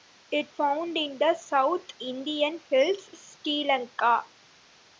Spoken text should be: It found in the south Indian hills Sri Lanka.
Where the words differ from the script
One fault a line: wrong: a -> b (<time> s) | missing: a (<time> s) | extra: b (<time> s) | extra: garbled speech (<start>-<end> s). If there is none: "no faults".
no faults